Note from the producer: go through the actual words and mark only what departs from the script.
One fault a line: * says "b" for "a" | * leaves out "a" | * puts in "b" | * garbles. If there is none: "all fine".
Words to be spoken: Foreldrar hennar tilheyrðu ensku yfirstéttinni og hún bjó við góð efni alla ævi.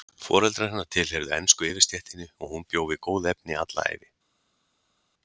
all fine